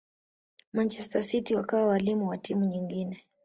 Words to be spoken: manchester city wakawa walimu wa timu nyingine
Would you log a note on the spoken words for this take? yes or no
no